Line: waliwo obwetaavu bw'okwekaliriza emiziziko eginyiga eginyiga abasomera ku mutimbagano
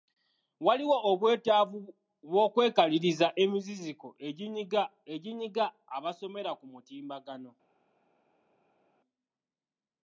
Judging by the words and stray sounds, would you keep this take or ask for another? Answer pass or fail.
pass